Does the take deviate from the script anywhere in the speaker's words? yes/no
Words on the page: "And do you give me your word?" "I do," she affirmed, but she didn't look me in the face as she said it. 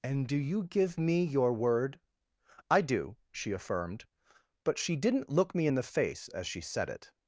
no